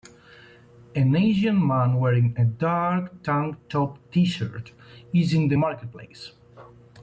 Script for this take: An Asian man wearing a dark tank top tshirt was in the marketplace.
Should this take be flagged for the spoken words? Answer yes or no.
yes